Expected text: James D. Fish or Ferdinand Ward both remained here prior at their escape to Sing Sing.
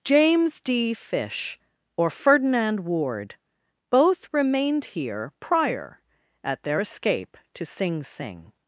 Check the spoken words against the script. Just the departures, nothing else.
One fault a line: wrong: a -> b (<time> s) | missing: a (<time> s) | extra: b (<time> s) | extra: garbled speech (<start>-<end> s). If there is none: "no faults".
no faults